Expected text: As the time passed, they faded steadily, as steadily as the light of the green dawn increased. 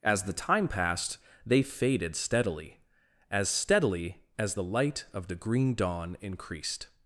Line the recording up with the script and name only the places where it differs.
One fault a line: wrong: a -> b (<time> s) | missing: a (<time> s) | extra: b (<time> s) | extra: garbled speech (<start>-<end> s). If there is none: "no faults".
no faults